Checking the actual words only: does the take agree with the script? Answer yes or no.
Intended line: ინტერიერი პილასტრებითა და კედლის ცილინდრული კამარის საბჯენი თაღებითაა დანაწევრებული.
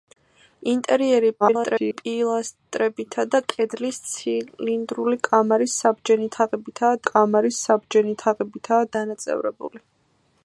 no